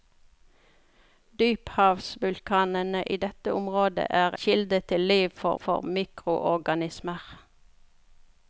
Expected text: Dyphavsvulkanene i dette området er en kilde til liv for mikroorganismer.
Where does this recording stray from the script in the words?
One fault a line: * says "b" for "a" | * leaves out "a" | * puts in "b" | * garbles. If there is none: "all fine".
* leaves out "en"
* puts in "for"